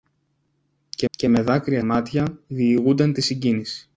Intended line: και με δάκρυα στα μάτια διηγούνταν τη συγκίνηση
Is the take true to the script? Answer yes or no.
no